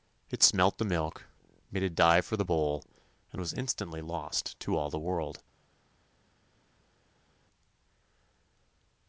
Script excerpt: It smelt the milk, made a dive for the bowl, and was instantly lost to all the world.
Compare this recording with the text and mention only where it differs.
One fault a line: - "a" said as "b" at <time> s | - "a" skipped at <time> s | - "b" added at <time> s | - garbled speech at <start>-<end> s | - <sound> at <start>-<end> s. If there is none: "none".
none